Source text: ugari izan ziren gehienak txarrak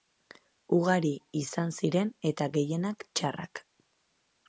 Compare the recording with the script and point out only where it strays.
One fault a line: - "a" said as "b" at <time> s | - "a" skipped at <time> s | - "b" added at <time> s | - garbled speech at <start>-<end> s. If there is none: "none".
- "eta" added at 2.3 s